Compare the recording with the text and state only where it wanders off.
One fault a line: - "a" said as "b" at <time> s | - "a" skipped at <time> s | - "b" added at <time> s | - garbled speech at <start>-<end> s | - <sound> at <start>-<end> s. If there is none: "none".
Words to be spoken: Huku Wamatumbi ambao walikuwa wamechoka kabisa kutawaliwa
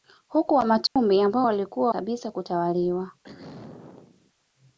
- dropout at 0.9-1.0 s
- "wamechoka" skipped at 1.9 s
- throat clearing at 3.2-4.3 s